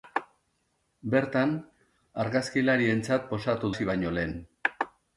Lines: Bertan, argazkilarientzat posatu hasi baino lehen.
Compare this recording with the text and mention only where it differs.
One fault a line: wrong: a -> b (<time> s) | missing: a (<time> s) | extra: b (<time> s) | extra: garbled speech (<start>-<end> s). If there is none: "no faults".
no faults